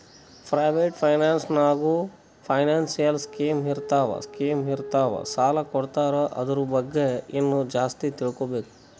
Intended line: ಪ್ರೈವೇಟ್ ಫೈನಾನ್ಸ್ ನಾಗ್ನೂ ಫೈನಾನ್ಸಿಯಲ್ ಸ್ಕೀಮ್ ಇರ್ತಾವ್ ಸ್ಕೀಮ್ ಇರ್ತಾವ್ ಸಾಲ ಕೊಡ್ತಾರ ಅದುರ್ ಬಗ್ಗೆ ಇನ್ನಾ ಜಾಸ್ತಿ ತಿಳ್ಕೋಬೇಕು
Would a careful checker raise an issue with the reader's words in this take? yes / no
no